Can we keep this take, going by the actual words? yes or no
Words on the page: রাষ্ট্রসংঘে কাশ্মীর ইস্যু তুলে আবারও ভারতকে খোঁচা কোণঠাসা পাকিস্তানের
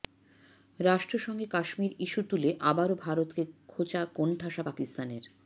yes